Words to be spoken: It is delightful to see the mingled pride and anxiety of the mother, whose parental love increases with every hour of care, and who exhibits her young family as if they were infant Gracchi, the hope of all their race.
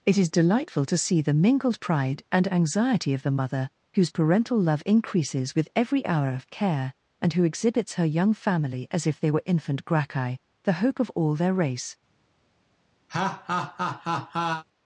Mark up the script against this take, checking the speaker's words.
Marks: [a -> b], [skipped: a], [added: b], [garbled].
It is delightful to see the mingled pride and anxiety of the mother, whose parental love increases with every hour of care, and who exhibits her young family as if they were infant Gracchi, the hope of all their race.